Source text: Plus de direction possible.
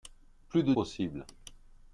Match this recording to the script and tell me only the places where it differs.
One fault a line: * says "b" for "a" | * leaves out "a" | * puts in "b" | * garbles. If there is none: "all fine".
* leaves out "direction"